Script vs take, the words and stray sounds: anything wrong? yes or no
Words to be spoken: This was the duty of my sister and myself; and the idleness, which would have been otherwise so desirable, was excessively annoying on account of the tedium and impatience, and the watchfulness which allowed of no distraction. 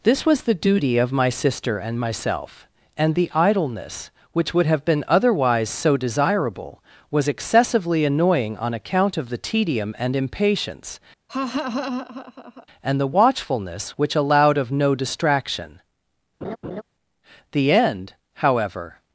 yes